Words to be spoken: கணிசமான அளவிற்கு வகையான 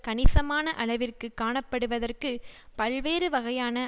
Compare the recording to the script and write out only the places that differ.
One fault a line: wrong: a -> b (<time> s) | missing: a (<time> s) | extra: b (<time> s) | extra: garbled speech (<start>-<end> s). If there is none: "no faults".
extra: காணப்படுவதற்கு பல்வேறு (1.4 s)